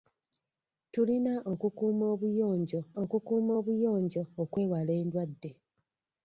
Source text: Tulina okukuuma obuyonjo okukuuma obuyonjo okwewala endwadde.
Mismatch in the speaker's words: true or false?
false